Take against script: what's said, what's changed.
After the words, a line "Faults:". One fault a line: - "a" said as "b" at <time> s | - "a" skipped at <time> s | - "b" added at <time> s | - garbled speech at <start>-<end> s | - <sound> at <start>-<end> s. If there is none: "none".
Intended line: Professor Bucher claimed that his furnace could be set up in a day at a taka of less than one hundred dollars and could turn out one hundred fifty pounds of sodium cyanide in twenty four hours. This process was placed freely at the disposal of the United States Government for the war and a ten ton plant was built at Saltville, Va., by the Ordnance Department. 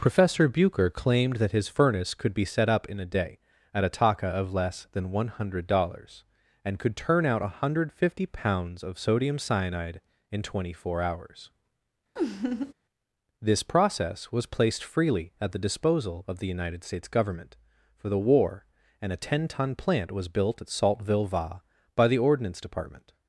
Professor Bucher claimed that his furnace could be set up in a day at a taka of less than one hundred dollars and could turn out one hundred fifty pounds of sodium cyanide in twenty four hours. This process was placed freely at the disposal of the United States Government for the war and a ten ton plant was built at Saltville, Va., by the Ordnance Department.
Faults:
- laugh at 12.2-12.7 s